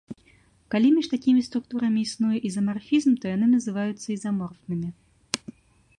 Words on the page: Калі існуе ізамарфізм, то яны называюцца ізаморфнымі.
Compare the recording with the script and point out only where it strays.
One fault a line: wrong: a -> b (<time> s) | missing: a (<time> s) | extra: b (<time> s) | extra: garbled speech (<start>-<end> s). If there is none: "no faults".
extra: між такімі структурамі (0.9 s)